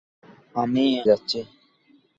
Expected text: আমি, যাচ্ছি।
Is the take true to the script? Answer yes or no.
yes